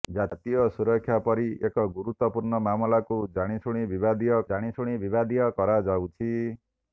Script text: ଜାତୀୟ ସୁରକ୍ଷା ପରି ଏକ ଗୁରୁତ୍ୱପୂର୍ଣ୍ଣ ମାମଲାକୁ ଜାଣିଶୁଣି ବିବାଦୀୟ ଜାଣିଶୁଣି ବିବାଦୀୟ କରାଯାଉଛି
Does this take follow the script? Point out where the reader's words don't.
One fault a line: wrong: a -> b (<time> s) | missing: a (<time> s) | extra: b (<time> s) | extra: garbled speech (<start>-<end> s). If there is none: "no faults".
no faults